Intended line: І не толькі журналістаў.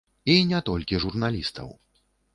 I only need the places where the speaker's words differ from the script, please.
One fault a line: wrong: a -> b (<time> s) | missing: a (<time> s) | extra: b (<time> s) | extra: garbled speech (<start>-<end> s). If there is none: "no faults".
no faults